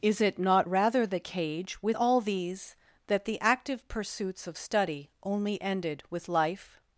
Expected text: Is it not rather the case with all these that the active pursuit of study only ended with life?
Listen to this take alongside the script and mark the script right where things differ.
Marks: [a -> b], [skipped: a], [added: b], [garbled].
Is it not rather the [case -> cage] with all these that the active [pursuit -> pursuits] of study only ended with life?